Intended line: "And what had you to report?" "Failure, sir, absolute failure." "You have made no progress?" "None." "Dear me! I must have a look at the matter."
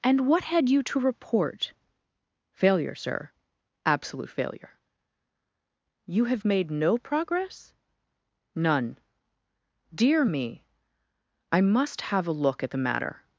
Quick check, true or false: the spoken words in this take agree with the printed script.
true